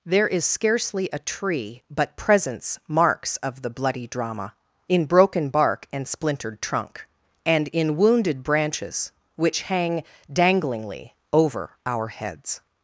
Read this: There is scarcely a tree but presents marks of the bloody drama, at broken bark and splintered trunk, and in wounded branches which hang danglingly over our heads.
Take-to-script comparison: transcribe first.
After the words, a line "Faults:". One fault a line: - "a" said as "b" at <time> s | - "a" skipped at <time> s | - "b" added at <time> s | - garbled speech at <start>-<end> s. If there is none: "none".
There is scarcely a tree but presents marks of the bloody drama, in broken bark and splintered trunk, and in wounded branches which hang danglingly over our heads.
Faults:
- "at" said as "in" at 4.9 s